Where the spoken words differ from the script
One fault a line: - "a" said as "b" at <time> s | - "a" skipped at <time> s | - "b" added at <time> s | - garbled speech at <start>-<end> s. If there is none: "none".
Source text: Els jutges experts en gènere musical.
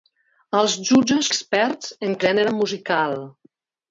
none